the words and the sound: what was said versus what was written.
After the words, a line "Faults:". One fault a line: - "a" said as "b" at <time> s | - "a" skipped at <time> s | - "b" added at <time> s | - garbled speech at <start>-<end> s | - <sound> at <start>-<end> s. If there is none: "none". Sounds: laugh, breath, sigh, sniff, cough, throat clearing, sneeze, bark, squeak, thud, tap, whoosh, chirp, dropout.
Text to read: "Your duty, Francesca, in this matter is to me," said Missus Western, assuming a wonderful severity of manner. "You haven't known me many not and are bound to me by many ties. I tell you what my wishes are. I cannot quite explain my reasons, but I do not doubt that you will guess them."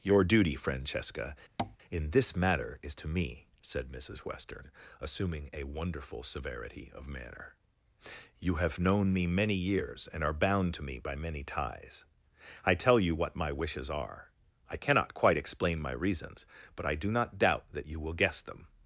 "Your duty, Francesca, in this matter is to me," said Missus Western, assuming a wonderful severity of manner. "You have known me many years and are bound to me by many ties. I tell you what my wishes are. I cannot quite explain my reasons, but I do not doubt that you will guess them."
Faults:
- tap at 1.6-1.8 s
- "haven't" said as "have" at 8.6 s
- "not" said as "years" at 9.5 s